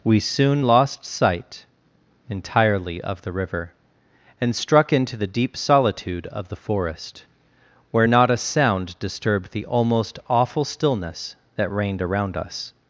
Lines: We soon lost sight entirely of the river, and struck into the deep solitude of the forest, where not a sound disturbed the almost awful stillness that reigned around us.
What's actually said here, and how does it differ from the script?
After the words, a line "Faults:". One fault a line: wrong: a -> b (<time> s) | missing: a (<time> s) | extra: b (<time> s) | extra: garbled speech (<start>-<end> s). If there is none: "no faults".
We soon lost sight entirely of the river, and struck into the deep solitude of the forest, where not a sound disturbed the almost awful stillness that reigned around us.
Faults:
no faults